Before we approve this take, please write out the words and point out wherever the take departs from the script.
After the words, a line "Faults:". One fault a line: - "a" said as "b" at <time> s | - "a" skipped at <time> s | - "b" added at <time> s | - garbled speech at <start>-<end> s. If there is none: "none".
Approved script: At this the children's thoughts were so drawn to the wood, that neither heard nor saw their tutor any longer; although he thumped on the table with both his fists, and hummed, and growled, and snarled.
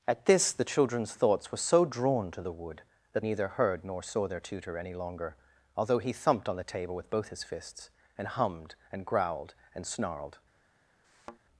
At this the children's thoughts were so drawn to the wood, that neither heard nor saw their tutor any longer; although he thumped on the table with both his fists, and hummed, and growled, and snarled.
Faults:
none